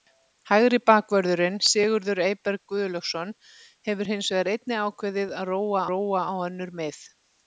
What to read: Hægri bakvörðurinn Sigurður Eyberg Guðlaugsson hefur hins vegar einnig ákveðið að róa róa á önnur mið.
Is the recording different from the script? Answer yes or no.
no